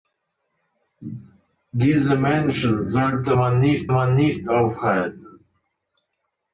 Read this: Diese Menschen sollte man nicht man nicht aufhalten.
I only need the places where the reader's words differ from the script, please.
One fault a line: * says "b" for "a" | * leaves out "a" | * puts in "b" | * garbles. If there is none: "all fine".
all fine